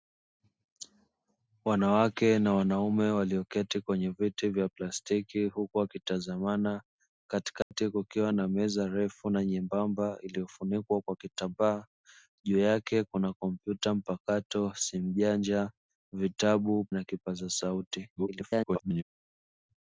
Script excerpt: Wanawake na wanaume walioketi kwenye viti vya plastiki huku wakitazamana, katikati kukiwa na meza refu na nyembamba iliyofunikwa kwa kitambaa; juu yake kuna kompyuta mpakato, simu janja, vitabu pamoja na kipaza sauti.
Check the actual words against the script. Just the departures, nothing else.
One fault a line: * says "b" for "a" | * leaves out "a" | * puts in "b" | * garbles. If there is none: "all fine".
* leaves out "pamoja"
* garbles